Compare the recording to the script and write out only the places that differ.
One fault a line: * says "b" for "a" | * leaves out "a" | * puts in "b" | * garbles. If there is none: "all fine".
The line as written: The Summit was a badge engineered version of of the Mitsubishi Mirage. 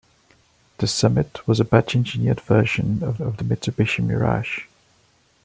all fine